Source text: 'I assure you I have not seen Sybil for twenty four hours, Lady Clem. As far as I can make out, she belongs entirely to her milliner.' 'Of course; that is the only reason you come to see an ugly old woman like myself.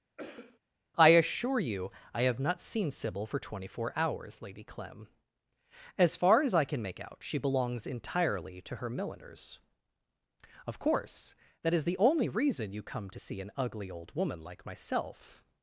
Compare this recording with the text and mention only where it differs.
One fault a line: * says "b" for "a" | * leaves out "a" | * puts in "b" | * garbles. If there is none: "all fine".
* says "milliners" for "milliner"